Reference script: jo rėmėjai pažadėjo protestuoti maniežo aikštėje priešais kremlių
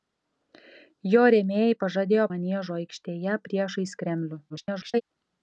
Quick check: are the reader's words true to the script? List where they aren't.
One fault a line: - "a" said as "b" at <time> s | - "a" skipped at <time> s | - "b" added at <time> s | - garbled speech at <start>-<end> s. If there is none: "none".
- "protestuoti" skipped at 2.2 s
- garbled speech at 4.5-5.0 s